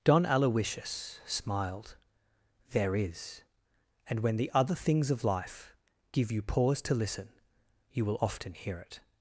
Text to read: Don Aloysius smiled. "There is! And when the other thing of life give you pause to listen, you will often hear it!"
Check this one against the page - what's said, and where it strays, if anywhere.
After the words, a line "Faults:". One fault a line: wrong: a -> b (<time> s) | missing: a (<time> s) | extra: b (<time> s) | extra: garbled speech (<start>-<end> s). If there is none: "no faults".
Don Aloysius smiled. "There is! And when the other things of life give you pause to listen, you will often hear it!"
Faults:
wrong: thing -> things (4.7 s)